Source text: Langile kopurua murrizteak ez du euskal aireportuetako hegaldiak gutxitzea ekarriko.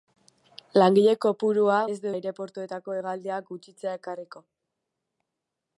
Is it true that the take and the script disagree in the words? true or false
true